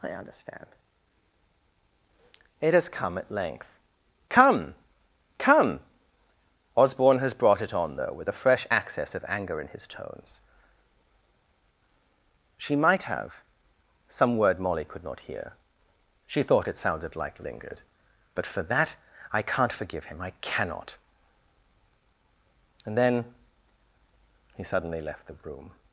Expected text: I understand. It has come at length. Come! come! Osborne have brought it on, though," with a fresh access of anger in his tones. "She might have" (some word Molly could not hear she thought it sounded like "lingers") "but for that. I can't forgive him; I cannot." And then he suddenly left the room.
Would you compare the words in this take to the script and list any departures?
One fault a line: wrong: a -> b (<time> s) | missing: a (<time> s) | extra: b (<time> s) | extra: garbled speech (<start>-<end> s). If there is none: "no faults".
wrong: have -> has (7.2 s)
wrong: lingers -> lingered (17.4 s)